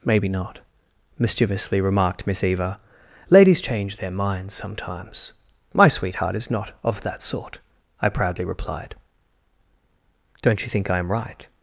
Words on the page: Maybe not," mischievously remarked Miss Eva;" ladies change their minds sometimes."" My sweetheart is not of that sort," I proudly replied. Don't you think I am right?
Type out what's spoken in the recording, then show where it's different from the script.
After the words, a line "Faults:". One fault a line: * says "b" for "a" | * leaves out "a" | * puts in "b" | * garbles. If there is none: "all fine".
Maybe not," mischievously remarked Miss Eva;" ladies change their minds sometimes."" My sweetheart is not of that sort," I proudly replied. Don't you think I am right?
Faults:
all fine